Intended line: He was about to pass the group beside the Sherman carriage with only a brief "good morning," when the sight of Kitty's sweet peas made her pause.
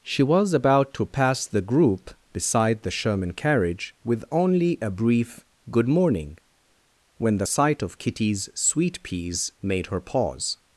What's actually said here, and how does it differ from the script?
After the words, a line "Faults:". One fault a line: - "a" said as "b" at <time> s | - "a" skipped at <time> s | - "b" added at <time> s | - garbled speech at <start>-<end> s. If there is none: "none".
She was about to pass the group beside the Sherman carriage with only a brief "good morning," when the sight of Kitty's sweet peas made her pause.
Faults:
- "He" said as "She" at 0.0 s